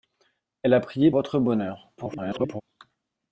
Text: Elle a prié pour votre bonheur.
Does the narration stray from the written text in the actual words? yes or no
yes